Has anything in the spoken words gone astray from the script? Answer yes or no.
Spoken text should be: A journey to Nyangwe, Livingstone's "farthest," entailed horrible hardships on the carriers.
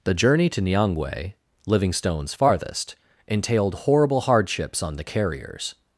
yes